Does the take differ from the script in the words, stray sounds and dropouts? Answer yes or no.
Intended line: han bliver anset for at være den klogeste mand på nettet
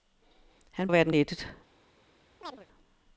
yes